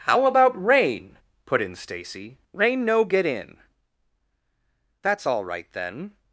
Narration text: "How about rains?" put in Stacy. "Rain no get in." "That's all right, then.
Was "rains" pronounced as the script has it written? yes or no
no